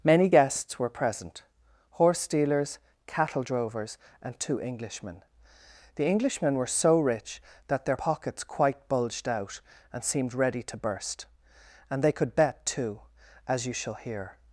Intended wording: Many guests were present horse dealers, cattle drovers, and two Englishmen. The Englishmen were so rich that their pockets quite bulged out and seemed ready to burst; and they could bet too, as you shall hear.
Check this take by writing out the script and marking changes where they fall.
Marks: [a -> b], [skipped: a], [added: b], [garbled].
Many guests were present horse dealers, cattle drovers, and two Englishmen. The Englishmen were so rich that their pockets quite bulged out and seemed ready to burst; and they could bet too, as you shall hear.